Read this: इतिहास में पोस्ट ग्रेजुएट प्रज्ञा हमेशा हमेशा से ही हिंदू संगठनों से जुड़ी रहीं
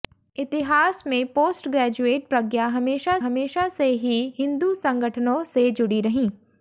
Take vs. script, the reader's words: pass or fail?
pass